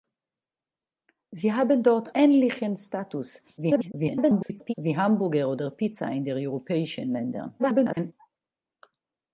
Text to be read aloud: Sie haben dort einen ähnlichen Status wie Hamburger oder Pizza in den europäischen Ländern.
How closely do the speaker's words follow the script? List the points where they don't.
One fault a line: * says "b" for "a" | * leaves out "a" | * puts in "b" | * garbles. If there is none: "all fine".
* leaves out "einen"
* garbles
* garbles